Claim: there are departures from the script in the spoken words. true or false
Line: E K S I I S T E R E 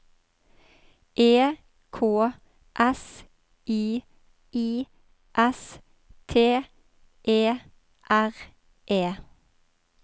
false